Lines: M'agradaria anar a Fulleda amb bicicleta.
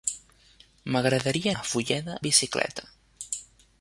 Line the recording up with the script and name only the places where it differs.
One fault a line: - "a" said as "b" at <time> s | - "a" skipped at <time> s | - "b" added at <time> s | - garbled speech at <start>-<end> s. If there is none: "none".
- "anar" skipped at 1.5 s
- "amb" skipped at 2.2 s